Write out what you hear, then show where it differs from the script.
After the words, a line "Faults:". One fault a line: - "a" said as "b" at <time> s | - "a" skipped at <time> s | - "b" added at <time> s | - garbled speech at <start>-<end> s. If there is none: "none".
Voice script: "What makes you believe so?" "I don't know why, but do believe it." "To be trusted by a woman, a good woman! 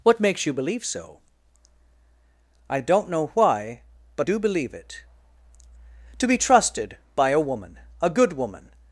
"What makes you believe so?" "I don't know why, but do believe it." "To be trusted by a woman, a good woman!
Faults:
none